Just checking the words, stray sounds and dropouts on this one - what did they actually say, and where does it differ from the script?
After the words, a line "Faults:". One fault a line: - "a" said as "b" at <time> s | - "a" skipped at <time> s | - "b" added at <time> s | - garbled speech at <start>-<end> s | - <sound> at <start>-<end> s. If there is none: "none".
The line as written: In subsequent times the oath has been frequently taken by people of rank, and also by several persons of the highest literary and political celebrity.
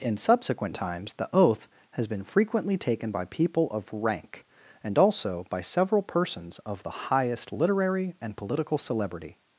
In subsequent times the oath has been frequently taken by people of rank, and also by several persons of the highest literary and political celebrity.
Faults:
none